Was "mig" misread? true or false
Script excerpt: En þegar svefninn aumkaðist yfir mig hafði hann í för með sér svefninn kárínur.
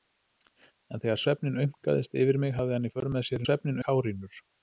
false